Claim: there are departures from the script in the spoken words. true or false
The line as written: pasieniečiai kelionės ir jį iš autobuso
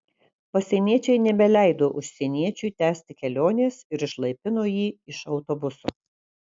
true